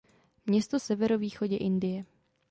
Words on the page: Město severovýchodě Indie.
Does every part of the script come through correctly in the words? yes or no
yes